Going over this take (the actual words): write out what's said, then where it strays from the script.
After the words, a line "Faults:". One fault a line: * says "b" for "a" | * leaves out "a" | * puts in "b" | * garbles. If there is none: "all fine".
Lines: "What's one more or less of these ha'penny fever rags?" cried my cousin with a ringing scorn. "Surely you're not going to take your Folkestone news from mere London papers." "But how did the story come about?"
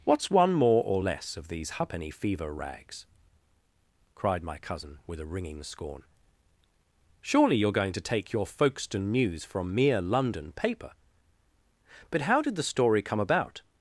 "What's one more or less of these ha'penny fever rags?" cried my cousin with a ringing scorn. "Surely you're going to take your Folkestone news from mere London paper." "But how did the story come about?"
Faults:
* leaves out "not"
* says "paper" for "papers"